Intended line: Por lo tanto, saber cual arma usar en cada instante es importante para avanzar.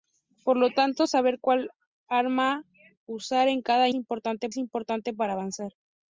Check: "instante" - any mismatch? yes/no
yes